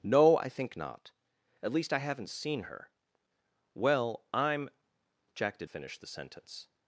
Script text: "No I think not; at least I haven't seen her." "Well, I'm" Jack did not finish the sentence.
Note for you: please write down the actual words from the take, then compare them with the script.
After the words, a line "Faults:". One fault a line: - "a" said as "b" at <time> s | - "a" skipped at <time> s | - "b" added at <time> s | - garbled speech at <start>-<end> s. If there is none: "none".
"No I think not; at least I haven't seen her." "Well, I'm" Jack did finish the sentence.
Faults:
- "not" skipped at 5.7 s